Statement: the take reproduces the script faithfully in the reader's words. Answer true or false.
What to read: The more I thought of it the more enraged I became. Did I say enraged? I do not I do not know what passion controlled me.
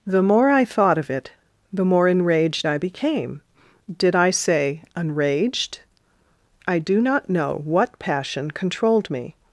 false